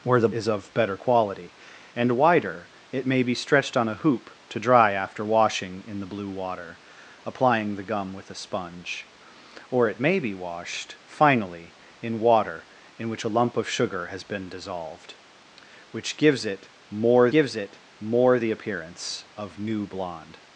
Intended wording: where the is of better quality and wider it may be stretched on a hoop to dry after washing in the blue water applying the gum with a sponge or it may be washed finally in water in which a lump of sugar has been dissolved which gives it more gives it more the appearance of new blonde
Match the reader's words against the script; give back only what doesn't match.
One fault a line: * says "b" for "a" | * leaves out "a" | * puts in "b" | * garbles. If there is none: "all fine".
all fine